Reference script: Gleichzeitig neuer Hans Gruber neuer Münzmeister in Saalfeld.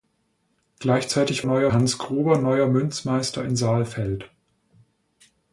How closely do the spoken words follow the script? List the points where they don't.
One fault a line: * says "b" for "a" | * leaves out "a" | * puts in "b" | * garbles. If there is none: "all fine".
all fine